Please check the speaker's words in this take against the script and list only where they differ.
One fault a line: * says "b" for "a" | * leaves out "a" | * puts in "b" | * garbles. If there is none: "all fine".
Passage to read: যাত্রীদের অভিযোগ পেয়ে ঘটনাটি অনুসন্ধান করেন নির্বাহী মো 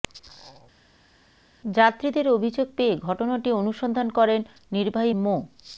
all fine